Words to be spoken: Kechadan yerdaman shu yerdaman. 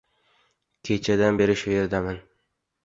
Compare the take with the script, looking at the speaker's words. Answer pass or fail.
fail